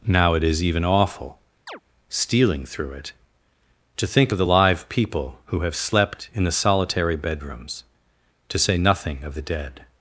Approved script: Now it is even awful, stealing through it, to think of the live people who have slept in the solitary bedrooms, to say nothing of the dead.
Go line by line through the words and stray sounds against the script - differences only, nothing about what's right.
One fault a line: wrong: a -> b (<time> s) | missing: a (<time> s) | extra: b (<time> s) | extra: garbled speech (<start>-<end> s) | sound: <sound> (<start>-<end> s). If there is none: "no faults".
sound: chirp (1.7-1.8 s)